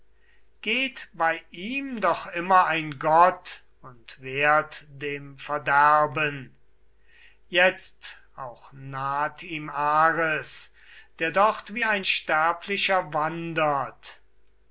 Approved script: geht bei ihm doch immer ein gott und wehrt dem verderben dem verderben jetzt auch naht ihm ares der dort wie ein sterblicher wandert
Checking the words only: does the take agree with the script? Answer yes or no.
no